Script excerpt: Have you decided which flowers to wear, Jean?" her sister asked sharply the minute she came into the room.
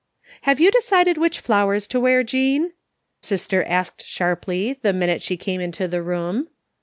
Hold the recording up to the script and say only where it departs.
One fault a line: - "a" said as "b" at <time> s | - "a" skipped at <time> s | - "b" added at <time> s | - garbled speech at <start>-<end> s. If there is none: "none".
- "her" skipped at 2.7 s